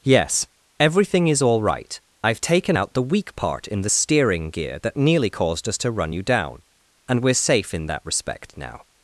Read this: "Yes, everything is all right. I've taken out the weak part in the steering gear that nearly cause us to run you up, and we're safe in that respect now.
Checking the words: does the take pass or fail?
fail